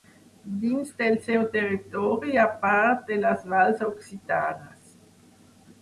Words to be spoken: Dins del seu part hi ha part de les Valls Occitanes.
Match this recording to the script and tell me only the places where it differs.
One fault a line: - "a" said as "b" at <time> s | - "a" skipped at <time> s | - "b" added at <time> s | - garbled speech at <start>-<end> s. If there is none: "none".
- "part" said as "territori" at 1.5 s